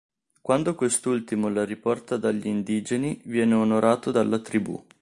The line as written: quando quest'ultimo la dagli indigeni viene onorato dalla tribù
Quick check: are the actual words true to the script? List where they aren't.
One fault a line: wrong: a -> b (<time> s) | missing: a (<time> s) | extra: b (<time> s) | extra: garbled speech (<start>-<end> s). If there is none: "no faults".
extra: riporta (1.6 s)